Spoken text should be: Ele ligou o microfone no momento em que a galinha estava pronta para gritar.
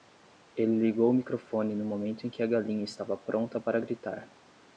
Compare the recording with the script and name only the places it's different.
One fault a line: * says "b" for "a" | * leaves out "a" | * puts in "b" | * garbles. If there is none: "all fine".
all fine